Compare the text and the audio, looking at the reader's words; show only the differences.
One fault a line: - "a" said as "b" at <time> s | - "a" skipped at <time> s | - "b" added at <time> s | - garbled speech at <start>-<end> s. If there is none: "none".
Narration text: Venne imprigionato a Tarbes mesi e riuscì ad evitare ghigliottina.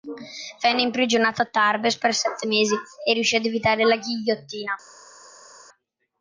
- "per sette" added at 1.9 s
- "la" added at 3.8 s